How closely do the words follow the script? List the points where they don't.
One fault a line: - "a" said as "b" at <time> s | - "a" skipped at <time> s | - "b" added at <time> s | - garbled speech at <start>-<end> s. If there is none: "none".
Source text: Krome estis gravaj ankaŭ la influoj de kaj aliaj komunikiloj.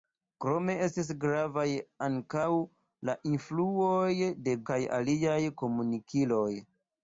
none